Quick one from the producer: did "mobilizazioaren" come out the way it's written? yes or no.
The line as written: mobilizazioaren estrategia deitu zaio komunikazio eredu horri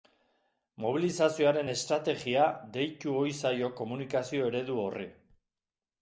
yes